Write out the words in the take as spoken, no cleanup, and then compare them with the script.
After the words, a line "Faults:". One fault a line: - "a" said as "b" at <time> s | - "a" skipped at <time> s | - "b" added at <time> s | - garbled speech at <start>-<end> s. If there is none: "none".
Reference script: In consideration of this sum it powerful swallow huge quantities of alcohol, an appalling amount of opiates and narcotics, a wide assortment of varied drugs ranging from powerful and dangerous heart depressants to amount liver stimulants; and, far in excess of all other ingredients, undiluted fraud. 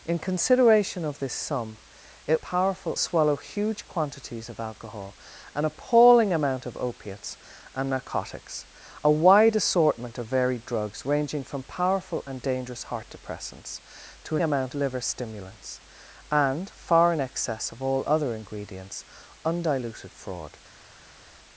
In consideration of this sum it powerful swallow huge quantities of alcohol, an appalling amount of opiates and narcotics, a wide assortment of varied drugs ranging from powerful and dangerous heart depressants to amount liver stimulants; and, far in excess of all other ingredients, undiluted fraud.
Faults:
none